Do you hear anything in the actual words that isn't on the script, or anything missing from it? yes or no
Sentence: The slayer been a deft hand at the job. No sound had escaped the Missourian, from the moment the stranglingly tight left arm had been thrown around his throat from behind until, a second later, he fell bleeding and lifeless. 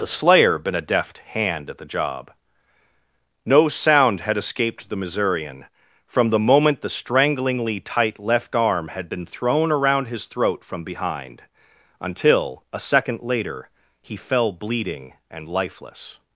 no